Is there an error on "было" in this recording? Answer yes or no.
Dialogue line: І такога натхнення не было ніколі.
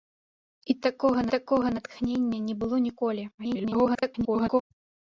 no